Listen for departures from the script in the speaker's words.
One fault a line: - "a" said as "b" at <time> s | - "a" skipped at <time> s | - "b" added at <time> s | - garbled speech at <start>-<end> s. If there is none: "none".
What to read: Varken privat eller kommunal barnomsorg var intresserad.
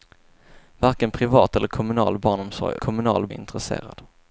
- "var" said as "kommunal" at 2.8 s